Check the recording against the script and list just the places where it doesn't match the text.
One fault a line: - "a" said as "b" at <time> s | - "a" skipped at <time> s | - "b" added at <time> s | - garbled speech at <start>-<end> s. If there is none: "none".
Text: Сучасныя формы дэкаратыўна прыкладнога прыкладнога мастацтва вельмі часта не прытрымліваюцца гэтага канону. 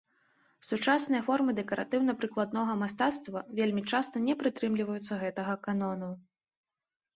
- "прыкладнога" skipped at 2.7 s